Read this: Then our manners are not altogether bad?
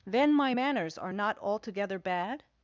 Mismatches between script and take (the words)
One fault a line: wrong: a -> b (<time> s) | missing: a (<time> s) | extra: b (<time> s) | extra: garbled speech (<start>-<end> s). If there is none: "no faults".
wrong: our -> my (0.3 s)